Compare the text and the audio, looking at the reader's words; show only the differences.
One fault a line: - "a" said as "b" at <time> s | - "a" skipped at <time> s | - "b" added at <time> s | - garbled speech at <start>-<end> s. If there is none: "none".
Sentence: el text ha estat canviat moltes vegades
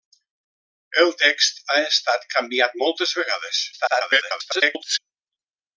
- garbled speech at 3.7-5.0 s